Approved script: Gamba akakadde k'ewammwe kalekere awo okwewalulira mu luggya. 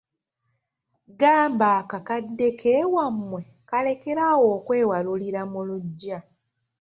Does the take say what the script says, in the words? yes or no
yes